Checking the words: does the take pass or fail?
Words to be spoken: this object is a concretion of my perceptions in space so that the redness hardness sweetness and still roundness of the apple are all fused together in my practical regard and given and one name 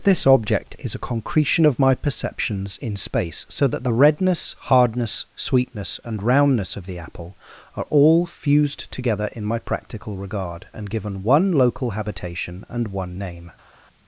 fail